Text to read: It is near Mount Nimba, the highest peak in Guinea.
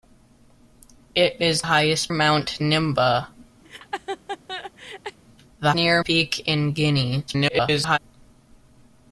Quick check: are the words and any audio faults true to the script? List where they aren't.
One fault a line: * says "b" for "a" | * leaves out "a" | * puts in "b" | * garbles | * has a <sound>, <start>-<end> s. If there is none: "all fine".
* says "highest" for "near"
* has a laugh, 3.6-5.2 s
* says "near" for "highest"
* garbles